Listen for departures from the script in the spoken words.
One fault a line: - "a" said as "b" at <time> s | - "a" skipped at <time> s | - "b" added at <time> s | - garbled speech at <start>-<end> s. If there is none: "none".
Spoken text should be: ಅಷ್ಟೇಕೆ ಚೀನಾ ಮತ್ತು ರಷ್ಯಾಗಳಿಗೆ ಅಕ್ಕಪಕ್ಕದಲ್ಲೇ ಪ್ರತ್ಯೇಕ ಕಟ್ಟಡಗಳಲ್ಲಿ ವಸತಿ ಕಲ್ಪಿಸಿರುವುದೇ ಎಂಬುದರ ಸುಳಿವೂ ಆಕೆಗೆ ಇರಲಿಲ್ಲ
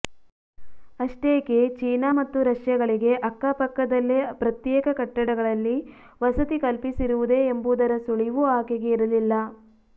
none